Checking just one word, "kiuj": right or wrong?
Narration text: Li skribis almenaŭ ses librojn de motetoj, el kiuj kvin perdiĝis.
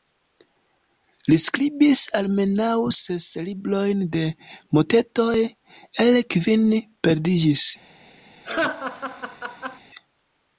wrong